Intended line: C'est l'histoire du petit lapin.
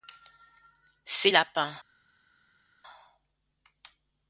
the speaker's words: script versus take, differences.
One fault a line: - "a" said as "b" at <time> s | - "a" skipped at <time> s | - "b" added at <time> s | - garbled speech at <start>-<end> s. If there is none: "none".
- "l'histoire du petit" skipped at 1.3 s